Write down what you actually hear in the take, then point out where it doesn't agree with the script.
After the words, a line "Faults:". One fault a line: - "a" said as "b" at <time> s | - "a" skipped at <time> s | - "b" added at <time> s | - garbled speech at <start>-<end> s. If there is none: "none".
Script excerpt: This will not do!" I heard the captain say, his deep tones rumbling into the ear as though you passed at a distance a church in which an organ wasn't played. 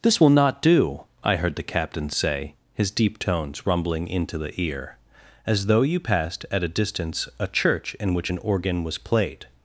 This will not do!" I heard the captain say, his deep tones rumbling into the ear as though you passed at a distance a church in which an organ was played.
Faults:
- "wasn't" said as "was" at 8.8 s